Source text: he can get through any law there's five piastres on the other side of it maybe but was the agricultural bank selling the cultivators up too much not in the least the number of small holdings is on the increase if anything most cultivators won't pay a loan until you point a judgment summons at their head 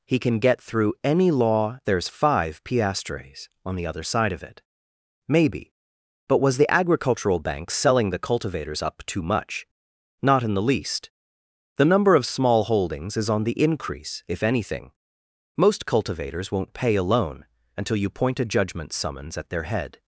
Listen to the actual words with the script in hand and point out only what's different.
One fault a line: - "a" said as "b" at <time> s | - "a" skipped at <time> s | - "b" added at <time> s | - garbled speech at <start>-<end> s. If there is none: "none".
none